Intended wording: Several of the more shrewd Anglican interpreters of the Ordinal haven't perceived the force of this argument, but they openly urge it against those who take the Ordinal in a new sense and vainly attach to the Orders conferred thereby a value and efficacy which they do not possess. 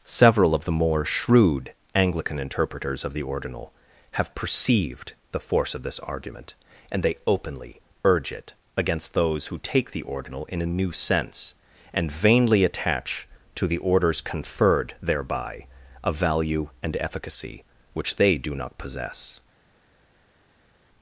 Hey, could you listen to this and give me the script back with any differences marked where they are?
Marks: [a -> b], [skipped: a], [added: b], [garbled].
Several of the more shrewd Anglican interpreters of the Ordinal [haven't -> have] perceived the force of this argument, [but -> and] they openly urge it against those who take the Ordinal in a new sense and vainly attach to the Orders conferred thereby a value and efficacy which they do not possess.